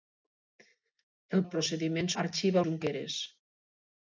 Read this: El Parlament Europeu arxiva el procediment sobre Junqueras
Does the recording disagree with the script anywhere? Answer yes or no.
yes